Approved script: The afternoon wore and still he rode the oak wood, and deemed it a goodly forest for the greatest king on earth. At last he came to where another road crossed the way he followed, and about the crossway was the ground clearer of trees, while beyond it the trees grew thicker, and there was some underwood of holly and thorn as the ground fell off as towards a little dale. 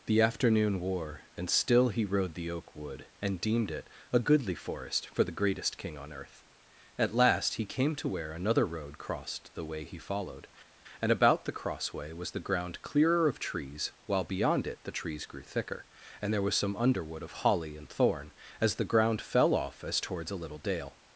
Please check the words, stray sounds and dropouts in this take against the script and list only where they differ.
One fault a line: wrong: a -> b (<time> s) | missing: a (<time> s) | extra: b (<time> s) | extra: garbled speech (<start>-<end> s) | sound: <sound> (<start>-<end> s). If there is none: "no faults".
no faults